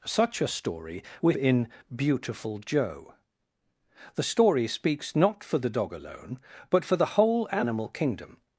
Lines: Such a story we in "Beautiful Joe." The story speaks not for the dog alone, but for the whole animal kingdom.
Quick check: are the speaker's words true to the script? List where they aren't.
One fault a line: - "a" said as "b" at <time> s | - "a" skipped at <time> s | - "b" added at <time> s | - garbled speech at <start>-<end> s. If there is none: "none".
none